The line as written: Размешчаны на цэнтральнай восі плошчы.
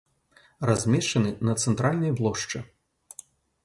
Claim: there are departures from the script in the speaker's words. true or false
true